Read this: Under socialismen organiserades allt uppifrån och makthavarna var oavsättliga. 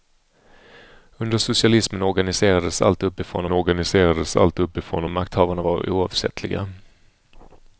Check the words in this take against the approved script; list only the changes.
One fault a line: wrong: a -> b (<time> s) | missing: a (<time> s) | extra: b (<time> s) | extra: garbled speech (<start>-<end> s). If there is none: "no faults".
extra: organiserades allt uppifrån (3.5 s)